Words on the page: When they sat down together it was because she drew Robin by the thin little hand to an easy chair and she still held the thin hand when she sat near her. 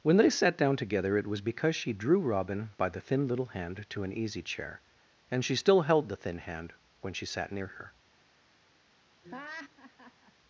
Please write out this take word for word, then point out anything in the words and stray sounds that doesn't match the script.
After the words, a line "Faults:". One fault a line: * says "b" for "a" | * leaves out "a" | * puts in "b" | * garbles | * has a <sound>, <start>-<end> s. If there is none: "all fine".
When they sat down together it was because she drew Robin by the thin little hand to an easy chair and she still held the thin hand when she sat near her.
Faults:
* has a laugh, 9.2-10.3 s